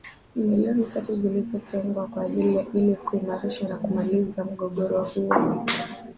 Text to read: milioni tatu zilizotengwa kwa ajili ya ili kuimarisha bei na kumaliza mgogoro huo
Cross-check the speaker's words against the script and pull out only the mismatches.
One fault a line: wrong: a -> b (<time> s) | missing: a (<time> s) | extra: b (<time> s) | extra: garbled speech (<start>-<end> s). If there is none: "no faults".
missing: bei (3.7 s)